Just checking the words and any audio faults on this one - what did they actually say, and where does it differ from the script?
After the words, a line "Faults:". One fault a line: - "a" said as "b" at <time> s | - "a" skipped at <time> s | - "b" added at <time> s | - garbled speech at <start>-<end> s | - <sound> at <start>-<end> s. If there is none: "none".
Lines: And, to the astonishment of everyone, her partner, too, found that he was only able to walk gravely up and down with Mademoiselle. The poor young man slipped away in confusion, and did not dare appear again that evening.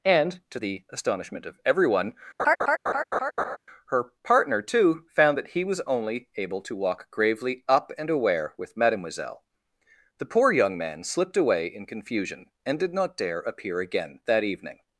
And, to the astonishment of everyone, her partner, too, found that he was only able to walk gravely up and aware with Mademoiselle. The poor young man slipped away in confusion, and did not dare appear again that evening.
Faults:
- laugh at 2.4-3.6 s
- "down" said as "aware" at 8.1 s